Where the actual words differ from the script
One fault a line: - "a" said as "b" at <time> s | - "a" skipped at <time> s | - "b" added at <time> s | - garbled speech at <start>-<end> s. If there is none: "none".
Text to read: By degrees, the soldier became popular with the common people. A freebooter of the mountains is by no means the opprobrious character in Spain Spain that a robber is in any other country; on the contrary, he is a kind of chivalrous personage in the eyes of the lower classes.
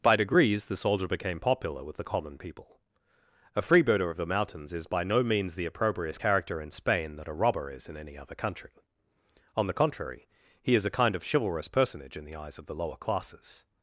- "Spain" skipped at 7.2 s